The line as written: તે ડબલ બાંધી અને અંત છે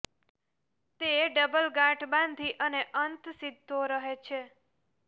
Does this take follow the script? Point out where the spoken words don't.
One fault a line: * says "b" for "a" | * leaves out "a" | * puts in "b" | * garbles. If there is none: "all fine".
* puts in "ગાંઠ"
* puts in "સીધો રહે"